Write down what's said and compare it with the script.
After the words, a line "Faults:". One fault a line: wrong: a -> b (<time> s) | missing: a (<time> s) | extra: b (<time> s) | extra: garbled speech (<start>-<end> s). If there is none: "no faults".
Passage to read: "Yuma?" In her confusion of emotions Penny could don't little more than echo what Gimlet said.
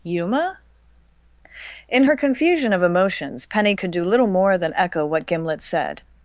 "Yuma?" In her confusion of emotions Penny could do little more than echo what Gimlet said.
Faults:
wrong: don't -> do (3.9 s)